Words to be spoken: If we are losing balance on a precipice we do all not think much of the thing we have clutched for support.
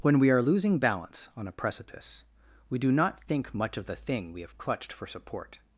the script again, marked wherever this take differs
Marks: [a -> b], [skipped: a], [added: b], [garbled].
[If -> When] we are losing balance on a precipice we do [skipped: all] not think much of the thing we have clutched for support.